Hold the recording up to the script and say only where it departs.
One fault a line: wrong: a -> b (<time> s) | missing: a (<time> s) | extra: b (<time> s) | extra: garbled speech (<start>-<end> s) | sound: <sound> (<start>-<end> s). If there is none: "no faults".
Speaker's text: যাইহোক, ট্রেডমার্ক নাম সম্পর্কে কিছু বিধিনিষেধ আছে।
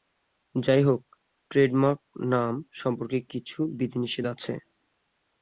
no faults